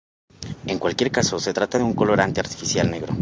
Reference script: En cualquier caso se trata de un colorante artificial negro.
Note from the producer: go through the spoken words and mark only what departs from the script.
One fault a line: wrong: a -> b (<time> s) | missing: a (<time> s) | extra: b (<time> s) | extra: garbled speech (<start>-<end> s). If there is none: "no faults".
no faults